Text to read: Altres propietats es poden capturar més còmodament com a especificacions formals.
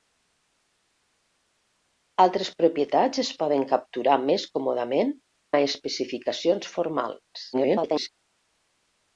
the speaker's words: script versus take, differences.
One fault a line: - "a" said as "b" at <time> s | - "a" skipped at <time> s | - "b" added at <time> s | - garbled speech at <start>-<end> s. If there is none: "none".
- "com" skipped at 5.1 s
- garbled speech at 7.5-8.1 s